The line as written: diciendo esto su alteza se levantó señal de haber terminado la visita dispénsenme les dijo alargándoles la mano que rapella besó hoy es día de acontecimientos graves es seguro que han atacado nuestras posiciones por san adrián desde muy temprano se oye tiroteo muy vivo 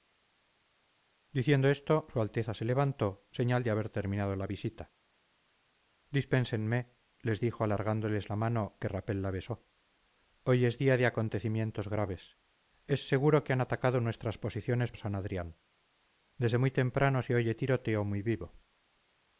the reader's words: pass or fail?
fail